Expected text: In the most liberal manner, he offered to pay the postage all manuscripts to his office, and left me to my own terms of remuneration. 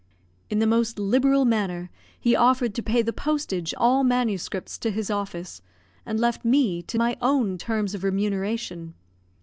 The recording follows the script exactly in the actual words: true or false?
true